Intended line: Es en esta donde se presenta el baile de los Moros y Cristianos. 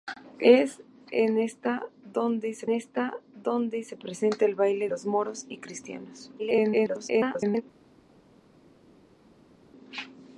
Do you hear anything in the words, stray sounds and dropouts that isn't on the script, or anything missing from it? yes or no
yes